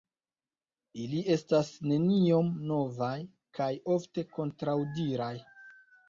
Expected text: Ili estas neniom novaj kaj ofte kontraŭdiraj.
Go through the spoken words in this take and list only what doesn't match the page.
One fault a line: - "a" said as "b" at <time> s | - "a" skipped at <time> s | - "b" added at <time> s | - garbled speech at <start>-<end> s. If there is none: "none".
none